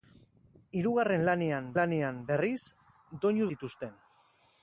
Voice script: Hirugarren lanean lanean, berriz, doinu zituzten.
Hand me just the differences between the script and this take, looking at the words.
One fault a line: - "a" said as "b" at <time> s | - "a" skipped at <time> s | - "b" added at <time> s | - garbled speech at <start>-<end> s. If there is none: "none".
none